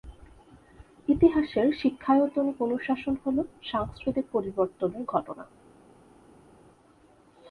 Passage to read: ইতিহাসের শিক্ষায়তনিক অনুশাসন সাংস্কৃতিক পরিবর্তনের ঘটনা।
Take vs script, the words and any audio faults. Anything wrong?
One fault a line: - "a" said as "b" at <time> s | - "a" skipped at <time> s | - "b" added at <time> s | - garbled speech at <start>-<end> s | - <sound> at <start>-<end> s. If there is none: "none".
- "হল" added at 3.2 s